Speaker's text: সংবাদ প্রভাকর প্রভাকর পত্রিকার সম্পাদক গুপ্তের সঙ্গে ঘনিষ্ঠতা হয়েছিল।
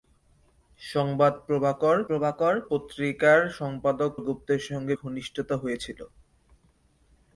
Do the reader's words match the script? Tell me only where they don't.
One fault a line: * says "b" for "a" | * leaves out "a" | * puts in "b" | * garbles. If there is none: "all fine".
all fine